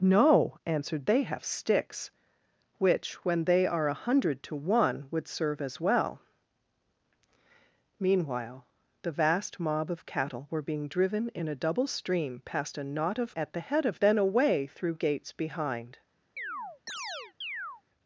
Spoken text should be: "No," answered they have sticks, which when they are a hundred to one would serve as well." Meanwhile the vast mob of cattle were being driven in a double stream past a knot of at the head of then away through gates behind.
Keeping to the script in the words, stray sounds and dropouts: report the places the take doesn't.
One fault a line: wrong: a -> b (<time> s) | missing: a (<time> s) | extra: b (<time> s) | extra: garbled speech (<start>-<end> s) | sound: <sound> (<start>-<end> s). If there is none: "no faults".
sound: chirp (16.4-17.8 s)